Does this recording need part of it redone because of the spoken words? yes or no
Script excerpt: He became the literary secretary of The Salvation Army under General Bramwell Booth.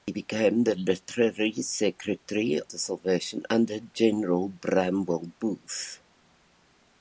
yes